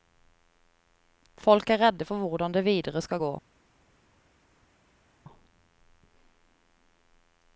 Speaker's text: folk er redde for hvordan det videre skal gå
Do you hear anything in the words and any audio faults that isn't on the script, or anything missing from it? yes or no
no